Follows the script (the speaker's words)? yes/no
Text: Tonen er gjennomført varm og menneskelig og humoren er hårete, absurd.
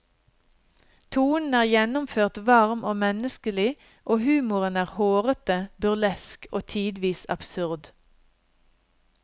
no